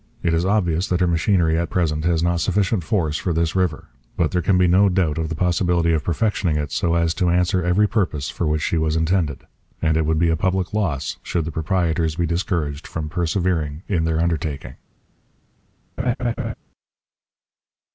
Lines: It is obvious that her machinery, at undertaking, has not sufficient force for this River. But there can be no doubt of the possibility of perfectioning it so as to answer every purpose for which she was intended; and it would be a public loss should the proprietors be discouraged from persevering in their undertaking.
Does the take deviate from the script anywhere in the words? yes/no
yes